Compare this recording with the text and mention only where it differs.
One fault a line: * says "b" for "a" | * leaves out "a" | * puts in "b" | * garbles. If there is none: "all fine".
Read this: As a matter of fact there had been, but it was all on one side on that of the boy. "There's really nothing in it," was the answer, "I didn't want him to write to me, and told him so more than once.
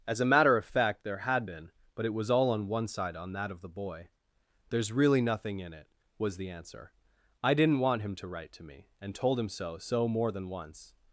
* puts in "so"